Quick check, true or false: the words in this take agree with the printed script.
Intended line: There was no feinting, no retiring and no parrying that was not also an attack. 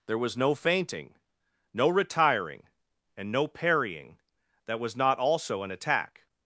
true